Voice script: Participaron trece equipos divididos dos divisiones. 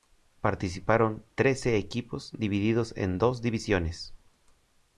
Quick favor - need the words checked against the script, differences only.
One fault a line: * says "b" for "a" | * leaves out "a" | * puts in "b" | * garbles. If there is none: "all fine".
* puts in "en"